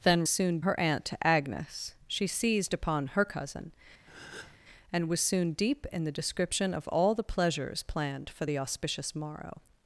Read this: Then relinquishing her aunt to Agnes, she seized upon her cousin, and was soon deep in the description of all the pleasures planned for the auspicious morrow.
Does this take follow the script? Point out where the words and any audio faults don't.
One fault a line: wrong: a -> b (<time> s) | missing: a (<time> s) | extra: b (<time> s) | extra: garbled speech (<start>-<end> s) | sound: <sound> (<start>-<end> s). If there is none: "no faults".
wrong: relinquishing -> soon (0.3 s)
sound: breath (4.1-4.6 s)